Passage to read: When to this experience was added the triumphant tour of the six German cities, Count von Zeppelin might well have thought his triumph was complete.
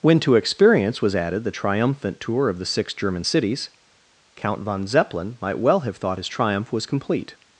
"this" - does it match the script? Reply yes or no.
no